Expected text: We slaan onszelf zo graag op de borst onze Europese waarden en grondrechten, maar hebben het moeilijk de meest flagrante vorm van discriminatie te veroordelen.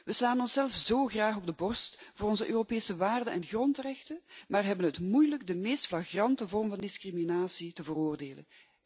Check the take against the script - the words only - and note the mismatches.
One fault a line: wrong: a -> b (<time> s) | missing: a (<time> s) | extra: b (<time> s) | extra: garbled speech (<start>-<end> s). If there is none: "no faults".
extra: voor (2.1 s)